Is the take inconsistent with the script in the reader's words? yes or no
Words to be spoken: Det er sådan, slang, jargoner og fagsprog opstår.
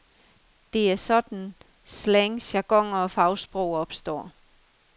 no